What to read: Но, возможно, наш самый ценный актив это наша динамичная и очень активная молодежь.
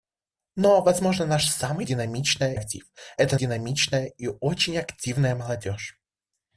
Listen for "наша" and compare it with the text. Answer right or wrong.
wrong